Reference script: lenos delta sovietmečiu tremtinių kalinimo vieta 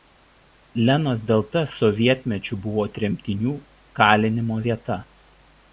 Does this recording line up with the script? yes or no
no